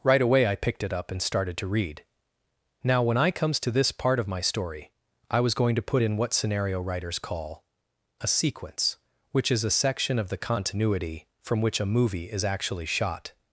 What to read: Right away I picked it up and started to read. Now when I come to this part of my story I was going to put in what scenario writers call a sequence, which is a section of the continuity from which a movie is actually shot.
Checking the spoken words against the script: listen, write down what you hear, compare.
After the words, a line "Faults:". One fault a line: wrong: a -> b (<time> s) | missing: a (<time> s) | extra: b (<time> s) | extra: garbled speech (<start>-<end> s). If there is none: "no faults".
Right away I picked it up and started to read. Now when I comes to this part of my story I was going to put in what scenario writers call a sequence, which is a section of the continuity from which a movie is actually shot.
Faults:
wrong: come -> comes (3.3 s)